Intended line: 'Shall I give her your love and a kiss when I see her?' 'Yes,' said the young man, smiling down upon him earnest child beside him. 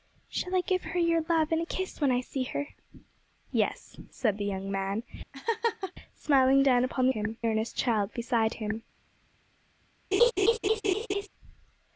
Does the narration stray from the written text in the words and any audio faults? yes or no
yes